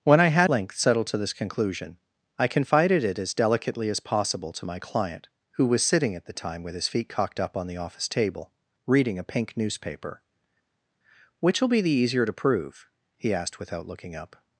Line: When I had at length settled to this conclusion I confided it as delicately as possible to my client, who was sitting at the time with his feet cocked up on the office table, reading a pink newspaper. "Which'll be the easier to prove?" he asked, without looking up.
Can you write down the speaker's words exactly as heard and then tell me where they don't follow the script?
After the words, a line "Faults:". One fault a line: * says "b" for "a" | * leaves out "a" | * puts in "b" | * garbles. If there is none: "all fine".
When I had length settled to this conclusion I confided it as delicately as possible to my client, who was sitting at the time with his feet cocked up on the office table, reading a pink newspaper. "Which'll be the easier to prove?" he asked, without looking up.
Faults:
* leaves out "at"